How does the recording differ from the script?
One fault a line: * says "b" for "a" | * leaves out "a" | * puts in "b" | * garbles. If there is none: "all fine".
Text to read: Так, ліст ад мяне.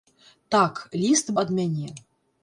all fine